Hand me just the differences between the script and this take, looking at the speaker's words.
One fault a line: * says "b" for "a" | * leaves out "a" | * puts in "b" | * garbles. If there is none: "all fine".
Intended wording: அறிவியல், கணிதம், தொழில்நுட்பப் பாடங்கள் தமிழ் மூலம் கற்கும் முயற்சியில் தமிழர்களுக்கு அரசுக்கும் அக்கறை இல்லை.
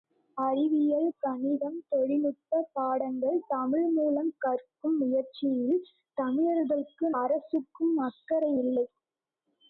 all fine